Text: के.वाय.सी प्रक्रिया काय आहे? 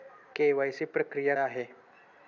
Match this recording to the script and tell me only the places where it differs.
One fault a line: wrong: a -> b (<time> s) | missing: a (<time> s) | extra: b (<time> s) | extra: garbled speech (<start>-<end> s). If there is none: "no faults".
missing: काय (1.4 s)